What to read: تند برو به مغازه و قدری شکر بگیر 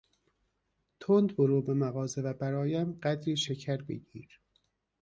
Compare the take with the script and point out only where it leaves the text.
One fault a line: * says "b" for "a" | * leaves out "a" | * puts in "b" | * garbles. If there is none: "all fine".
* puts in "برایم"